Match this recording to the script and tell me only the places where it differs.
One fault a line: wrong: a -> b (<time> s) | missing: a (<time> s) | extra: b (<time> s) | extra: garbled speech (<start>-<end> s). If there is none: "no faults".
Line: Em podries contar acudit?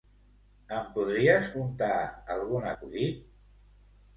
extra: algun (2.4 s)